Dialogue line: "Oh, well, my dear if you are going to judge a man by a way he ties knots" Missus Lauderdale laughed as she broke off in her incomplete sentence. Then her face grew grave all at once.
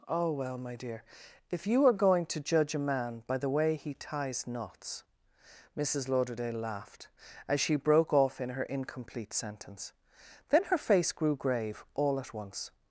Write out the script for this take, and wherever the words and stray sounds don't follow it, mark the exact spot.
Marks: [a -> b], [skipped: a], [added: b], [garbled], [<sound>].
"Oh, well, my dear if you are going to judge a man by [a -> the] way he ties knots" Missus Lauderdale laughed as she broke off in her incomplete sentence. Then her face grew grave all at once.